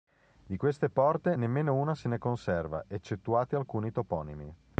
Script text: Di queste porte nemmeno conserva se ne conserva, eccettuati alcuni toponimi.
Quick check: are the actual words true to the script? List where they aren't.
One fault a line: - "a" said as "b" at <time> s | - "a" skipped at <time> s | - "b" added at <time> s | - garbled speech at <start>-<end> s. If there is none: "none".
- "conserva" said as "una" at 1.7 s